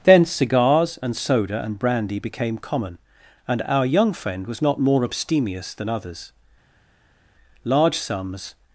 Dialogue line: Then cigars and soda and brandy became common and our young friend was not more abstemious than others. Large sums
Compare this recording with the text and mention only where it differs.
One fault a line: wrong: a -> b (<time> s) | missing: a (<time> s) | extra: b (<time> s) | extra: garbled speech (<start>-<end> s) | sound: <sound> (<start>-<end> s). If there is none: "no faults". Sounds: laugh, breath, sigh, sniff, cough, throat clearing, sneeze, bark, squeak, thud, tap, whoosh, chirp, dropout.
no faults